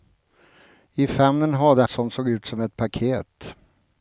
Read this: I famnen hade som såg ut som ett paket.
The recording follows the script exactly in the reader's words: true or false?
true